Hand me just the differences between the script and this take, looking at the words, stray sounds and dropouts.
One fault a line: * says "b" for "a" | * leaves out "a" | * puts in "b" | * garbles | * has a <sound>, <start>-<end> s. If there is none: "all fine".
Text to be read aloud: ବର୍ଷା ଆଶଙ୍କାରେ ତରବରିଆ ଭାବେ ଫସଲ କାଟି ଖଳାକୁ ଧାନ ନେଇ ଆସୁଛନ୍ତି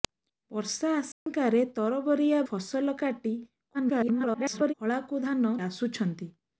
* has a dropout, 1.1-1.3 s
* leaves out "ଭାବେ"
* garbles
* leaves out "ନେଇ"